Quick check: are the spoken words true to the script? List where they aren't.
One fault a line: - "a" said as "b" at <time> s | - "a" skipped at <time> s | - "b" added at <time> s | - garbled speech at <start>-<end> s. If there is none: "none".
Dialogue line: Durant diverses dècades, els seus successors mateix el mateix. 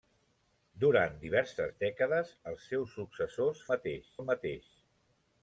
none